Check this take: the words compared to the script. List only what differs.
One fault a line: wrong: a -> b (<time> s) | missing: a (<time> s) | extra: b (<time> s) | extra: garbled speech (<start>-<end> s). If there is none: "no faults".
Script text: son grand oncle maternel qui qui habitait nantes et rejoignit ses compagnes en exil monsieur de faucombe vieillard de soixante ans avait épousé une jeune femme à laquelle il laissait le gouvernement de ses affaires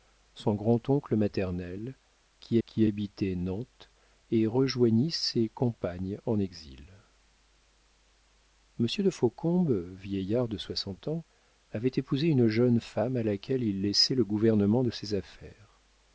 no faults